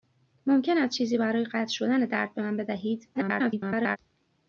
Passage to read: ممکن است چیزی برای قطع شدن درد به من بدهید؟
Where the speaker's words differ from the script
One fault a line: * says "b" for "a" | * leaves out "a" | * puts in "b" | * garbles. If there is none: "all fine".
* garbles